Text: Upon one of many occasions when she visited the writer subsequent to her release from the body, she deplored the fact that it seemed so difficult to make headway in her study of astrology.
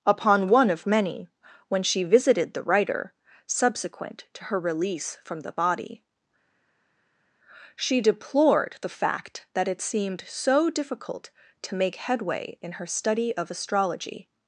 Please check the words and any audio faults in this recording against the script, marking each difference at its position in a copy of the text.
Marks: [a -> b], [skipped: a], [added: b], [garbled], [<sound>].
Upon one of many [skipped: occasions] when she visited the writer subsequent to her release from the body, she deplored the fact that it seemed so difficult to make headway in her study of astrology.